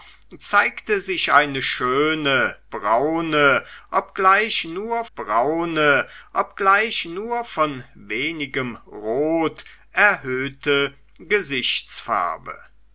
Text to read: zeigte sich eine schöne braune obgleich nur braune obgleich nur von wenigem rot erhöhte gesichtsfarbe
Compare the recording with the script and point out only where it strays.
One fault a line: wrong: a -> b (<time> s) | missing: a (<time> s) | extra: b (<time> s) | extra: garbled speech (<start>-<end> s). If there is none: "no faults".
no faults